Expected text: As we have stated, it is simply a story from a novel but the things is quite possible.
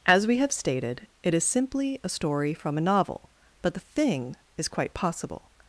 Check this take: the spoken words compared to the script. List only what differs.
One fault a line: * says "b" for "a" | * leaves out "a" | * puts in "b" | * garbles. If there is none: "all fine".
* says "thing" for "things"